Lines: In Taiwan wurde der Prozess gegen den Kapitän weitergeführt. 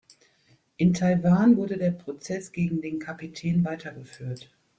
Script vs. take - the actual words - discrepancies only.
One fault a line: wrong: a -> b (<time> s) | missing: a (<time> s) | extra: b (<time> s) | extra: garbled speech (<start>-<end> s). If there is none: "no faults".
no faults